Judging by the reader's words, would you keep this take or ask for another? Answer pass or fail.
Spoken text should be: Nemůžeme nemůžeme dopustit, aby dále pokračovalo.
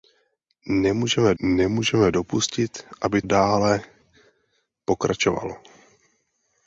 pass